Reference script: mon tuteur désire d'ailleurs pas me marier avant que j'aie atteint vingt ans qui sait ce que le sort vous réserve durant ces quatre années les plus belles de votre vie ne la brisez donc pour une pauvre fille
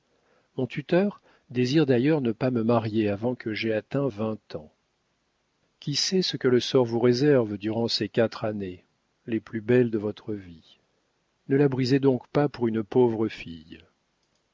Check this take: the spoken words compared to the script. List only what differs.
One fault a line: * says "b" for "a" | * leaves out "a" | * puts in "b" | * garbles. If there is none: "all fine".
* puts in "ne"
* puts in "pas"